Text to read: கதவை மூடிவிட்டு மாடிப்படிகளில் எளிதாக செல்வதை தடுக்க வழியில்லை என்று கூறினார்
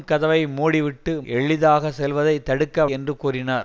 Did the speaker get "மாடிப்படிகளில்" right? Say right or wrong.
wrong